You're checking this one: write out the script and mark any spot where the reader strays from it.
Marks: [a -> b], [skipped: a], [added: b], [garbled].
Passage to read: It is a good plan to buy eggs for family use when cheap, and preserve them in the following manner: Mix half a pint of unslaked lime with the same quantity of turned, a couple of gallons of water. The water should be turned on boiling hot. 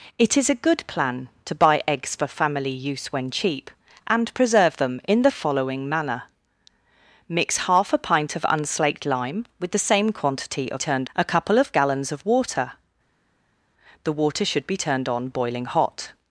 It is a good plan to buy eggs for family use when cheap, and preserve them in the following manner: Mix half a pint of unslaked lime with the same quantity of turned, a couple of gallons of water. The water should be turned on boiling hot.